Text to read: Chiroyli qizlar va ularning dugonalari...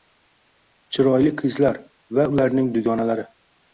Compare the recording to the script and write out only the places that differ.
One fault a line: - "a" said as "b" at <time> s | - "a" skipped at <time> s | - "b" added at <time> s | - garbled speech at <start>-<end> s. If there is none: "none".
none